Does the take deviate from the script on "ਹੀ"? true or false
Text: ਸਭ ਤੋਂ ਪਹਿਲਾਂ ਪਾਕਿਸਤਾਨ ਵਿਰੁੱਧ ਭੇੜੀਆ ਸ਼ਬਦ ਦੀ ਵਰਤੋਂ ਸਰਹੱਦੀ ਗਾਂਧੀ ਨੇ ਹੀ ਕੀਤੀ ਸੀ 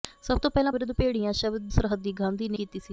true